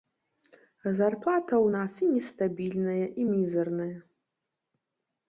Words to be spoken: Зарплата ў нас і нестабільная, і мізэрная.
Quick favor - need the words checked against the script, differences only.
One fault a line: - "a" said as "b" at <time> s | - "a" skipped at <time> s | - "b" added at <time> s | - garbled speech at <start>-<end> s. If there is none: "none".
none